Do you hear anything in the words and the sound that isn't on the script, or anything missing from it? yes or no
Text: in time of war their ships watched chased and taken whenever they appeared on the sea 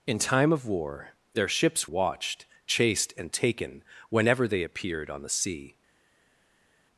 no